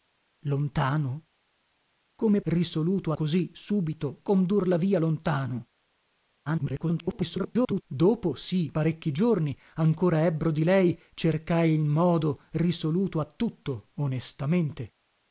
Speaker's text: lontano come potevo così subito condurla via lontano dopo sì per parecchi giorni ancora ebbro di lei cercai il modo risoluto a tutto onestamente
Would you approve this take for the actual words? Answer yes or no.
no